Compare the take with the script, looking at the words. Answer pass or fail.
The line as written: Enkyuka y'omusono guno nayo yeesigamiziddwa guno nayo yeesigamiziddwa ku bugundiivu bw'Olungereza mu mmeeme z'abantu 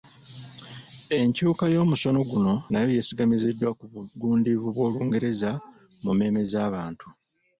fail